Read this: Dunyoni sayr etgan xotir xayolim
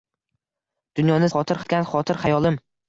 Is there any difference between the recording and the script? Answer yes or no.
yes